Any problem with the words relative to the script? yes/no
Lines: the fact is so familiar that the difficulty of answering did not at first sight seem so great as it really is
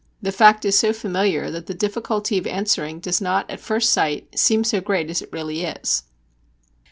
yes